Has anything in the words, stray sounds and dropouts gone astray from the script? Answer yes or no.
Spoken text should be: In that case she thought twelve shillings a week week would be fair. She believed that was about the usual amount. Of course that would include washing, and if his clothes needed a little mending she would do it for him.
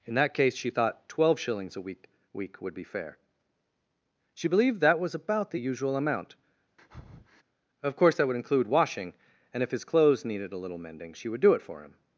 yes